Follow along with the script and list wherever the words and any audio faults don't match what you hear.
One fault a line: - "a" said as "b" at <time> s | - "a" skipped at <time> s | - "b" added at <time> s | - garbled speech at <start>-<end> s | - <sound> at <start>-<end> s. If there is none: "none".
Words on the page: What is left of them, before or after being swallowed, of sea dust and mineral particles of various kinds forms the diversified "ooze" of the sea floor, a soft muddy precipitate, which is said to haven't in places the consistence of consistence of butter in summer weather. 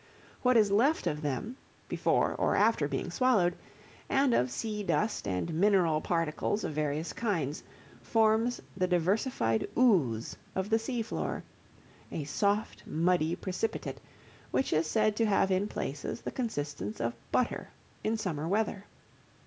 - "and" added at 4.1 s
- "haven't" said as "have" at 15.2 s
- "consistence of" skipped at 17.1 s